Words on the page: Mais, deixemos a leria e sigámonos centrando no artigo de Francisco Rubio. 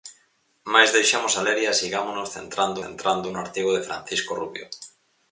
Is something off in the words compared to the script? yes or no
yes